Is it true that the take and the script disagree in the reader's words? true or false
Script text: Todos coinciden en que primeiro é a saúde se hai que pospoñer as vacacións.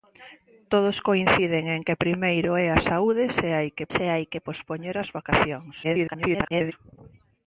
true